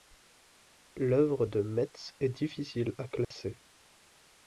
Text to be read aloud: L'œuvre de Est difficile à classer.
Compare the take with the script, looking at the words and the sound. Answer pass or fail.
fail